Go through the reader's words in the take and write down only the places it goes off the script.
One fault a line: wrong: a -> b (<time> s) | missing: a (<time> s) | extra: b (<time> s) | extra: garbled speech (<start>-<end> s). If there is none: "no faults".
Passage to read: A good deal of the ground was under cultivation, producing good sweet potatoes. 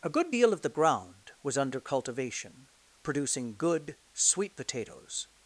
no faults